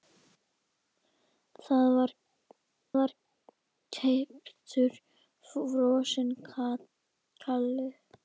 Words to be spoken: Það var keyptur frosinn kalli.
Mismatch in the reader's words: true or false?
true